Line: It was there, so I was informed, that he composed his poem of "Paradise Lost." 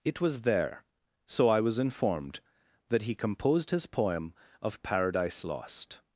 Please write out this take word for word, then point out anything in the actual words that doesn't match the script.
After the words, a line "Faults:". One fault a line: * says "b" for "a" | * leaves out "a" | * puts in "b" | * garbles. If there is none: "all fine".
It was there, so I was informed, that he composed his poem of "Paradise Lost."
Faults:
all fine